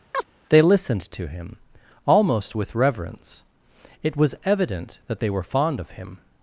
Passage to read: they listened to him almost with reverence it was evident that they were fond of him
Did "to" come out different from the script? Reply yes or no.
no